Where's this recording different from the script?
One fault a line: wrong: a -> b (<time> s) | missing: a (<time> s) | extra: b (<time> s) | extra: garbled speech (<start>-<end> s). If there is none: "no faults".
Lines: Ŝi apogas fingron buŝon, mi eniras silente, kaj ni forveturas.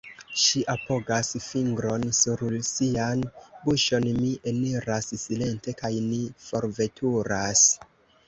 extra: sur sian (2.2 s)